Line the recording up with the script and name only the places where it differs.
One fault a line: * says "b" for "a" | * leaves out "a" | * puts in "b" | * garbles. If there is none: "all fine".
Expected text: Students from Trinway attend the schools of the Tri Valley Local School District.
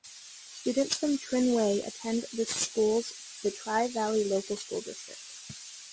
* leaves out "of"